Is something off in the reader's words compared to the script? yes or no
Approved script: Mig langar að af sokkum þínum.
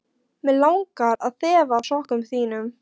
yes